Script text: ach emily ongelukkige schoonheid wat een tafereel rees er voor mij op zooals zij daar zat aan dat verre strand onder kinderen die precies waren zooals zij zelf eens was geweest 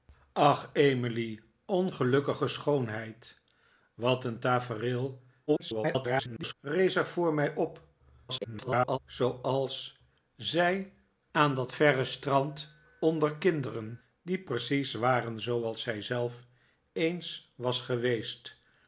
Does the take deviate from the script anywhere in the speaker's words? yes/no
yes